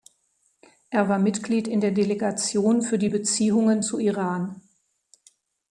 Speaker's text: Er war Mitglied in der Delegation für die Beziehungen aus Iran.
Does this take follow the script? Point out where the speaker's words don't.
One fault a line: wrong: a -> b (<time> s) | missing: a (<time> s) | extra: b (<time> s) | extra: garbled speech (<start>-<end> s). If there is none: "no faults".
wrong: aus -> zu (3.8 s)